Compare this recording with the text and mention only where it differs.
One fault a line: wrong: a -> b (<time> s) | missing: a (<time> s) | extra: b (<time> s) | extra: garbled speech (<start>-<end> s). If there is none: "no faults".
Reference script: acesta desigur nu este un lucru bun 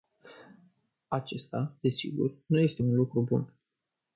no faults